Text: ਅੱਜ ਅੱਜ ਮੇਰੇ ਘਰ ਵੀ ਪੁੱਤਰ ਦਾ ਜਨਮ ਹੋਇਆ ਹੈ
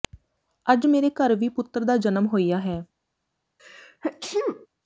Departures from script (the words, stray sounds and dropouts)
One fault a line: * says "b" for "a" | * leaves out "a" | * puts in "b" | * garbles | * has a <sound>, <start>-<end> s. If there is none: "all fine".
* leaves out "ਅੱਜ"
* has a sneeze, 3.6-4.7 s